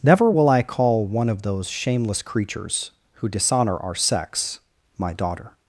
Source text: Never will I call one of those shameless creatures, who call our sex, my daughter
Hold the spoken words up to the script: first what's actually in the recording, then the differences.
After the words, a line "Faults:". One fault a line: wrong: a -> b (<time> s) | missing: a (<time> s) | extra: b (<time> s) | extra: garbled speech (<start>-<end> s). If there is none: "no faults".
Never will I call one of those shameless creatures, who dishonor our sex, my daughter
Faults:
wrong: call -> dishonor (3.3 s)